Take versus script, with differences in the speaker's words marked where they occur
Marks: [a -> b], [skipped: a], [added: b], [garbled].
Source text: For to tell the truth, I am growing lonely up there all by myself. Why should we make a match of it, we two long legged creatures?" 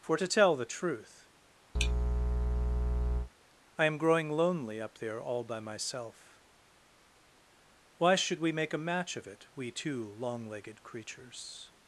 For to tell the truth, I am growing lonely up there all by myself. Why should we make a match of it, we two long legged creatures?"